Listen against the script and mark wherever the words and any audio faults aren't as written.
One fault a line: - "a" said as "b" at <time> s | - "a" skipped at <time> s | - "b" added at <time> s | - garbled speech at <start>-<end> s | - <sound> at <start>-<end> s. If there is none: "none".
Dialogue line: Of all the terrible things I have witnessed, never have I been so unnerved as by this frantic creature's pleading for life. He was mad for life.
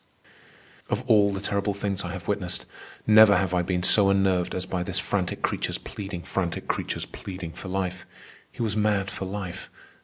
- "frantic creature's pleading" added at 6.2 s